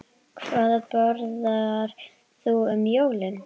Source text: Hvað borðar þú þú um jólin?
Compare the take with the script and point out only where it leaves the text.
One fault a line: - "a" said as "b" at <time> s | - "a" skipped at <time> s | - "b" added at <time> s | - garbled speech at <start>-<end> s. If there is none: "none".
- "þú" skipped at 2.6 s